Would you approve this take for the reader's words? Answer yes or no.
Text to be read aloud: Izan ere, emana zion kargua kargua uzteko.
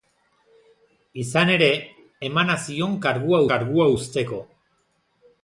yes